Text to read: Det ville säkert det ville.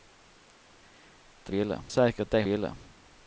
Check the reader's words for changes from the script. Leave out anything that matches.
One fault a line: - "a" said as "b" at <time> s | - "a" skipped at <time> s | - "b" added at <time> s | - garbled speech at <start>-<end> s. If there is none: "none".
none